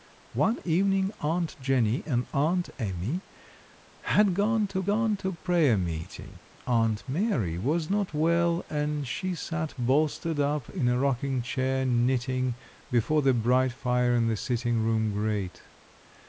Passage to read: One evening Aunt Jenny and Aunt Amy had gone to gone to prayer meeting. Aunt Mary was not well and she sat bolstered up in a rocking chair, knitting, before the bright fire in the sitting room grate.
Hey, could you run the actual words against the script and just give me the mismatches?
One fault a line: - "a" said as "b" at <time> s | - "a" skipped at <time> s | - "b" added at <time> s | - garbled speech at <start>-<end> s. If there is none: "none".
none